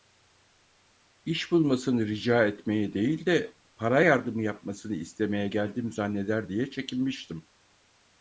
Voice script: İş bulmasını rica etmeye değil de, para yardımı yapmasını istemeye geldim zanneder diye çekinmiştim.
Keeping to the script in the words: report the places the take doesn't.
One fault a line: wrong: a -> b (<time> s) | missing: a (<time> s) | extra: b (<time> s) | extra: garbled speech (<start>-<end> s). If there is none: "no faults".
no faults